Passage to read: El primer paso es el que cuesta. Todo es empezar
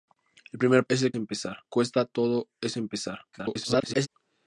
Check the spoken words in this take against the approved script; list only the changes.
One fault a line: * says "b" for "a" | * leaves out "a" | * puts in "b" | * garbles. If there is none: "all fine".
* leaves out "paso"
* says "empezar" for "que"
* garbles